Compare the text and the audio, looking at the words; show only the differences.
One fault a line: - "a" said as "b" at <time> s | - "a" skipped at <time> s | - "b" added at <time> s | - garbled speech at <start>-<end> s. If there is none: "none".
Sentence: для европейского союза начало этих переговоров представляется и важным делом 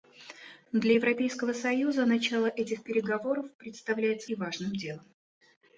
none